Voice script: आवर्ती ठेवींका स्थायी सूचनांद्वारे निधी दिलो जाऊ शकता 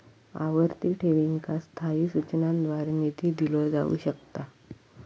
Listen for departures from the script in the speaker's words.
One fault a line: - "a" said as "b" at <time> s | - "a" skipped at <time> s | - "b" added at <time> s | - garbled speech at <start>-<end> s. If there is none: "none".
none